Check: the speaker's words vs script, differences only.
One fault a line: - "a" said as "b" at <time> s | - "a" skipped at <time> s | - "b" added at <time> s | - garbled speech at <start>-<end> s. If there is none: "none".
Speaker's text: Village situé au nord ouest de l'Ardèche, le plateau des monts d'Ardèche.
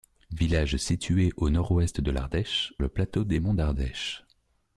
none